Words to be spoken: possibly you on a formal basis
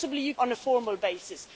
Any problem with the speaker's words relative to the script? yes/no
no